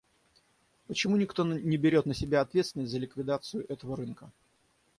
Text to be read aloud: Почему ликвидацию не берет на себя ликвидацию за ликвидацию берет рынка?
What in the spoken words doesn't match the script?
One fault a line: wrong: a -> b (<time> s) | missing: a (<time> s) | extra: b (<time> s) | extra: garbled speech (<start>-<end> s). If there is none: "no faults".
wrong: ликвидацию -> никто (1.1 s)
wrong: ликвидацию -> ответственность (2.4 s)
wrong: берет -> этого (3.7 s)